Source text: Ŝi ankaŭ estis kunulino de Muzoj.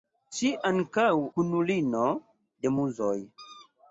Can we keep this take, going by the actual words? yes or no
no